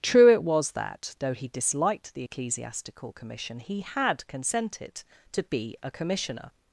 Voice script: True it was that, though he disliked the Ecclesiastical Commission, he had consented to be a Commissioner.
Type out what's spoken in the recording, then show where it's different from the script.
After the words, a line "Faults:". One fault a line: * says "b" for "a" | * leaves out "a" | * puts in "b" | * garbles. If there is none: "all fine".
True it was that, though he disliked the Ecclesiastical Commission, he had consented to be a Commissioner.
Faults:
all fine